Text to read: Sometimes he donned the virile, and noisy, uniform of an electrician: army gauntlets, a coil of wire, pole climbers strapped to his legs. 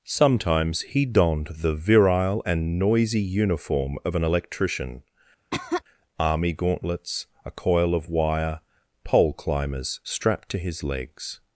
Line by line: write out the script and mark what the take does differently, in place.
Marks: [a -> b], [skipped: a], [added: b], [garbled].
Sometimes he donned the virile, and noisy, uniform of an electrician: army gauntlets, a coil of wire, pole climbers strapped to his legs.